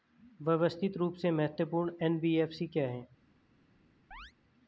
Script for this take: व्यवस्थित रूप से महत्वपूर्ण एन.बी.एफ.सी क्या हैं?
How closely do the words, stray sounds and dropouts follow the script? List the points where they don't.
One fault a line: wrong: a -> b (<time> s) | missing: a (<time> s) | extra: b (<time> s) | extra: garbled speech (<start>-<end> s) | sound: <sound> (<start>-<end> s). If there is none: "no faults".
sound: chirp (4.1-4.3 s)